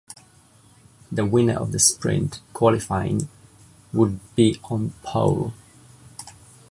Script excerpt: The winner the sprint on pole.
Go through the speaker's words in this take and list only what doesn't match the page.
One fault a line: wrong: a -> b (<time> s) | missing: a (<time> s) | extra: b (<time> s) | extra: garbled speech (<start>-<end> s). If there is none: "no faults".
extra: of (1.6 s)
extra: qualifying would be (2.5 s)